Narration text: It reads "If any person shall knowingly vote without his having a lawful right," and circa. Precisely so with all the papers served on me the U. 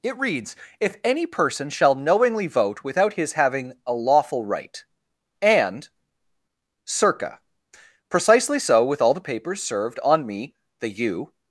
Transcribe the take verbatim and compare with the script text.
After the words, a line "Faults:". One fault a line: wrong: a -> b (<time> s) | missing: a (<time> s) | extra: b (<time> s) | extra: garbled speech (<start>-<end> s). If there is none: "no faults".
It reads "If any person shall knowingly vote without his having a lawful right," and circa. Precisely so with all the papers served on me the U.
Faults:
no faults